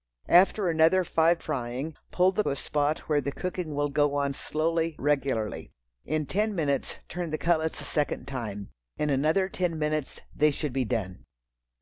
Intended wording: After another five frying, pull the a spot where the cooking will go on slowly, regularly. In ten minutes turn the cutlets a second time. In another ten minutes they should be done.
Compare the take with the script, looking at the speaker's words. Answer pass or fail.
pass